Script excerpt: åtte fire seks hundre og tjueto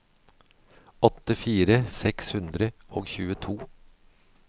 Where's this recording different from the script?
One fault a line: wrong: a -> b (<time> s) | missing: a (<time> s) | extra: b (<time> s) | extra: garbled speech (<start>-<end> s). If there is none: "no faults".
no faults